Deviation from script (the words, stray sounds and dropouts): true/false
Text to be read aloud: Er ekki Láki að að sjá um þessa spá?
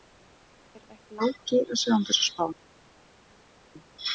true